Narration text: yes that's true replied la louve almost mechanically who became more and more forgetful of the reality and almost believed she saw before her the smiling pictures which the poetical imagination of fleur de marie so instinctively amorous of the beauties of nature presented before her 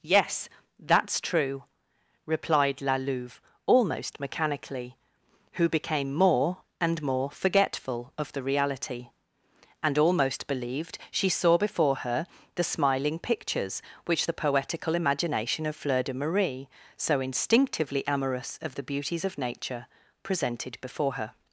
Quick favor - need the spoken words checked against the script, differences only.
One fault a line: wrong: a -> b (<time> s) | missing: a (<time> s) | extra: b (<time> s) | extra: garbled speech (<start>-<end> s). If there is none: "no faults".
no faults